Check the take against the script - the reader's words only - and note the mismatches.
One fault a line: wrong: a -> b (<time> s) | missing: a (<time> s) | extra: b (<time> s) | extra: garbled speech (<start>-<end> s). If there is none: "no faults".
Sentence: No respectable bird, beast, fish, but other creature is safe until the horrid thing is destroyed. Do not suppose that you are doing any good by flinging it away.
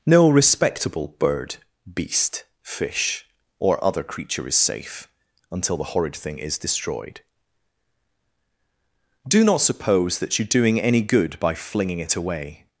wrong: but -> or (3.6 s)